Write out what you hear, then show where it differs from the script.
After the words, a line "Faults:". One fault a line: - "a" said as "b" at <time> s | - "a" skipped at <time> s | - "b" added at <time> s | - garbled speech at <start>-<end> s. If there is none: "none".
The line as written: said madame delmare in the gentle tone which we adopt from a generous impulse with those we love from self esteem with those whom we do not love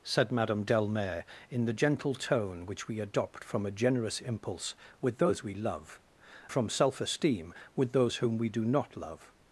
said madame delmare in the gentle tone which we adopt from a generous impulse with those we love from self esteem with those whom we do not love
Faults:
none